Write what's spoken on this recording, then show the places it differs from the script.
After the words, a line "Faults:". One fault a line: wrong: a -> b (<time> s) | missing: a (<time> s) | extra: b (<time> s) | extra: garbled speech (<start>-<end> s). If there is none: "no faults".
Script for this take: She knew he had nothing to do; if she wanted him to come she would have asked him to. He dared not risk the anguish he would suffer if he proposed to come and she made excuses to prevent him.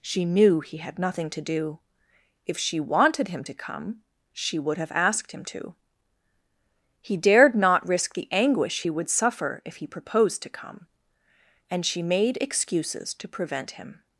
She knew he had nothing to do; if she wanted him to come she would have asked him to. He dared not risk the anguish he would suffer if he proposed to come and she made excuses to prevent him.
Faults:
no faults